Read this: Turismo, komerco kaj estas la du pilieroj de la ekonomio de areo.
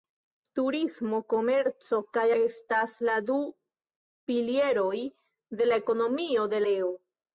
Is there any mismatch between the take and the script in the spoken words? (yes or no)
no